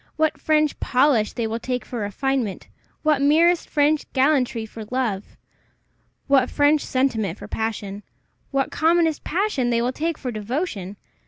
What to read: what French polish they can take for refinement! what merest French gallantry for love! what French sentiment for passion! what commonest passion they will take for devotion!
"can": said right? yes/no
no